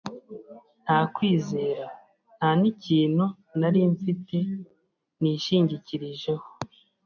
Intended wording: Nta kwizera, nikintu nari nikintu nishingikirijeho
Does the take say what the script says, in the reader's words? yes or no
no